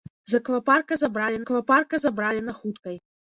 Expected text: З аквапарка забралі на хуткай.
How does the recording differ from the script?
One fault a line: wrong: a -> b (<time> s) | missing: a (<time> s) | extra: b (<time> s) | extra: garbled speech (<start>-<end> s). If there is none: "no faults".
extra: аквапарка забралі (1.4 s)